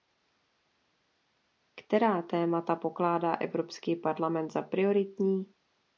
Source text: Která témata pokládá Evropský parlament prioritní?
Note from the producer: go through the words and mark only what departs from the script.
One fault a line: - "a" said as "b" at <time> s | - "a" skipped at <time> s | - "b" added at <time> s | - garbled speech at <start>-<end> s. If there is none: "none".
- "za" added at 4.5 s